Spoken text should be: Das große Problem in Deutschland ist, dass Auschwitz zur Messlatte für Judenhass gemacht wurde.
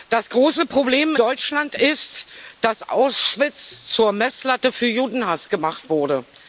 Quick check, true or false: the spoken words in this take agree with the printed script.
false